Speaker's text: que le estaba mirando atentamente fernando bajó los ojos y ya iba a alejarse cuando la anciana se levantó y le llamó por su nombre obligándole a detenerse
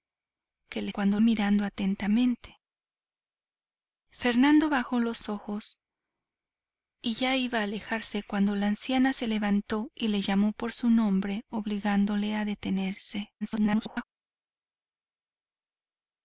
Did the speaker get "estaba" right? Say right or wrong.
wrong